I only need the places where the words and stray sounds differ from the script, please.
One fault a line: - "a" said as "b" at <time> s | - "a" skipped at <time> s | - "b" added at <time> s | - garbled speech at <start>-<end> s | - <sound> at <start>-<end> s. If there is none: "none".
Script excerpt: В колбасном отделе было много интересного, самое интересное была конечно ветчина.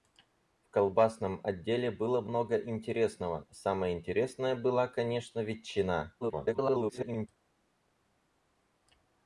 - garbled speech at 6.2-7.3 s